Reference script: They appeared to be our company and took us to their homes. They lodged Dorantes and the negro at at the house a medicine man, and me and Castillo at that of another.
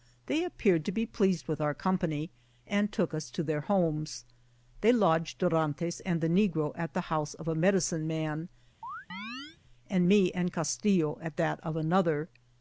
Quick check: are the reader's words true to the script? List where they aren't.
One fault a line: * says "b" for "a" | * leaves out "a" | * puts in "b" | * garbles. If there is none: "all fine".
* puts in "pleased with"
* leaves out "at"
* puts in "of"